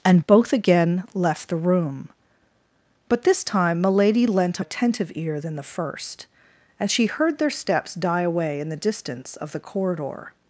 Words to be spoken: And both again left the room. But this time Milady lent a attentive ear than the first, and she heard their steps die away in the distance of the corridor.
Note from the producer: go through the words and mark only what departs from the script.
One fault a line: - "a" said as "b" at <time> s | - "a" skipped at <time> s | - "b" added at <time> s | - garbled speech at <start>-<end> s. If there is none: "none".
none